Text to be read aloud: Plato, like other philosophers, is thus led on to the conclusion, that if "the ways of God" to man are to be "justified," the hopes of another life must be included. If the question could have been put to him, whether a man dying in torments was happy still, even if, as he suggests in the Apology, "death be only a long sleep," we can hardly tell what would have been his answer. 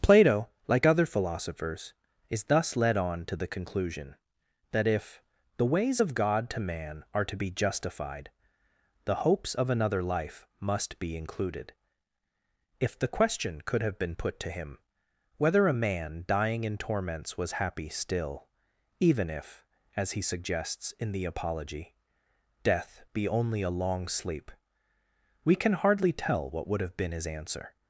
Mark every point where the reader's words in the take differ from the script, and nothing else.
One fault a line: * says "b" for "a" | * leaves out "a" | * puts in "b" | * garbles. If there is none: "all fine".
all fine